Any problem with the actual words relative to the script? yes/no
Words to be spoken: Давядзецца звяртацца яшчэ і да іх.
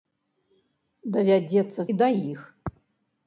yes